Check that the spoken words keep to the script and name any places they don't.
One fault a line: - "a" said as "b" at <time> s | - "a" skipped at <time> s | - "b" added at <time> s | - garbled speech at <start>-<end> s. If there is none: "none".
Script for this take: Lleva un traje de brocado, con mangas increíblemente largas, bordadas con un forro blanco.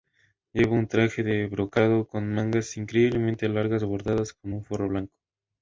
none